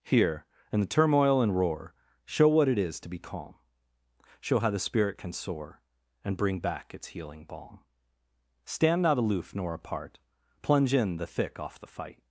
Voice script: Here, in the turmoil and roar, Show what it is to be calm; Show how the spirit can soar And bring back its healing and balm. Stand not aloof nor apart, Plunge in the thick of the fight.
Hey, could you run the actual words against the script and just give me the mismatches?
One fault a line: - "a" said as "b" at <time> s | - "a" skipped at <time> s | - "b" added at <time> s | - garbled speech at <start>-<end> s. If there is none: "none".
- "and" skipped at 7.5 s
- "of" said as "off" at 11.6 s